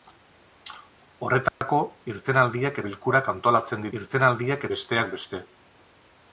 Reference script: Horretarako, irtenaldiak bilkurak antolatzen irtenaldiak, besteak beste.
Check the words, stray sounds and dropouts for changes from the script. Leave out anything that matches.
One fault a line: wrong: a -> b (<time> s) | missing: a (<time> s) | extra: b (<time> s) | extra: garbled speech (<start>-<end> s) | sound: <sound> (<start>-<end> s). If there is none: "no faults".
sound: dropout (1.5-1.6 s)